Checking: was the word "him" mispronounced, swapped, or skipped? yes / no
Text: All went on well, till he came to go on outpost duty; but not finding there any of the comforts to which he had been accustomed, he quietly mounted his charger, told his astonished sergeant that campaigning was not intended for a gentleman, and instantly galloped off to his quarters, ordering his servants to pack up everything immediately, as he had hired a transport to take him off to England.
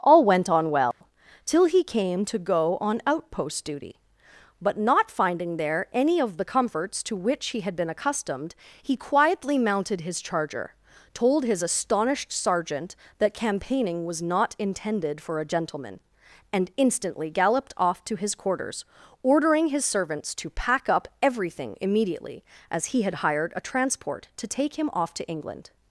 no